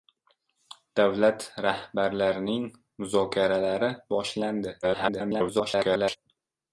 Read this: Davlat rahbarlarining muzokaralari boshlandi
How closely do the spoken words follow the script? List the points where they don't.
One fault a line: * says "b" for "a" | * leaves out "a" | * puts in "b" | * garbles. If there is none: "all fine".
* garbles